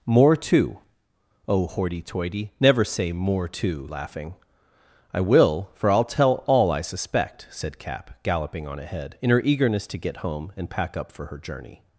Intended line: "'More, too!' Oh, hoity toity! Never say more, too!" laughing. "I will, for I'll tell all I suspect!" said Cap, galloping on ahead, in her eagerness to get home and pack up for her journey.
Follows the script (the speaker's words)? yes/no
yes